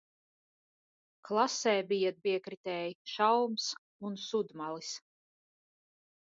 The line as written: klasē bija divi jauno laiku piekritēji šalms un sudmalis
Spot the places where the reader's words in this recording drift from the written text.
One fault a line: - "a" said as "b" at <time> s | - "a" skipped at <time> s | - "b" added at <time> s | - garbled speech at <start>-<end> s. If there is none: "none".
- "divi jauno laiku" skipped at 2.1 s